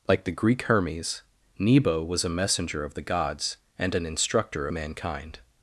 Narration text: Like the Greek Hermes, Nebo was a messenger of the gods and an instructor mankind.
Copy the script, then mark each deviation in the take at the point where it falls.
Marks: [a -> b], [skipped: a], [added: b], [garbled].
Like the Greek Hermes, Nebo was a messenger of the gods and an instructor mankind.